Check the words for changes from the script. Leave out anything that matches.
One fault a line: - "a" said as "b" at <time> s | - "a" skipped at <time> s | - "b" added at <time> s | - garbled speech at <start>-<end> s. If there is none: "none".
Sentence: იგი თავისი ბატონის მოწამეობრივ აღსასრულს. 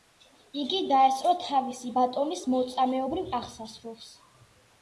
- "დაესწრო" added at 0.9 s